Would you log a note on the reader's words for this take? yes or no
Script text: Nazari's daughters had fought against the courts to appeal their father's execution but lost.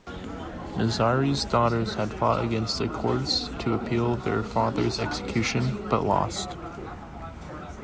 no